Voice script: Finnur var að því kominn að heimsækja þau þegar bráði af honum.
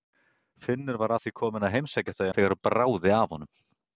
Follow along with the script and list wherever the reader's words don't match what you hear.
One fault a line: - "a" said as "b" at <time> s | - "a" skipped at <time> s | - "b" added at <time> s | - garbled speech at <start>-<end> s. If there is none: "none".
none